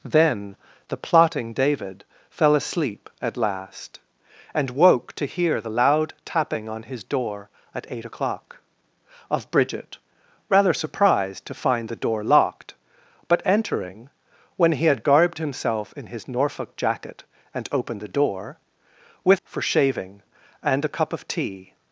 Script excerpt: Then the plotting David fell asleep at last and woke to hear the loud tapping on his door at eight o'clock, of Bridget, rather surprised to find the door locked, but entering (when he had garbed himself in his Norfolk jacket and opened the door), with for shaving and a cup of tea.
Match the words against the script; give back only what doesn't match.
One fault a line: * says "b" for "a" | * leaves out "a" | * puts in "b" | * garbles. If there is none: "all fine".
all fine